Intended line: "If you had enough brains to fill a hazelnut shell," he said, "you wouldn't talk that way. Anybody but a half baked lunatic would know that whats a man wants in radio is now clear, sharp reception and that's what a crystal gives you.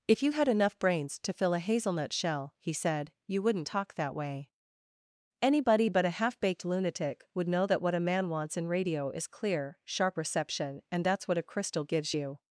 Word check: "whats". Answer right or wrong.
wrong